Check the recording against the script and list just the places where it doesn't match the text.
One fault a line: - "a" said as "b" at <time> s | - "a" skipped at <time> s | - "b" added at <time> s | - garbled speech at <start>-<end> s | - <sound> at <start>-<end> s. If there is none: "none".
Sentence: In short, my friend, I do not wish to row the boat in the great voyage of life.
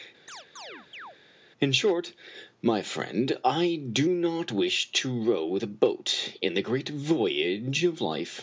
- chirp at 0.3-1.2 s